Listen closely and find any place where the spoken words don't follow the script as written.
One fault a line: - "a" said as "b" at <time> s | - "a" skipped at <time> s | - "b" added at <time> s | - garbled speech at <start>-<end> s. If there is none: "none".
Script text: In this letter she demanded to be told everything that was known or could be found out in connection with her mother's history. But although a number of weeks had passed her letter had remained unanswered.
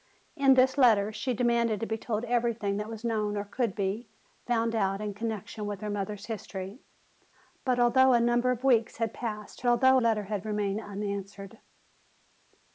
- "her" said as "although" at 9.7 s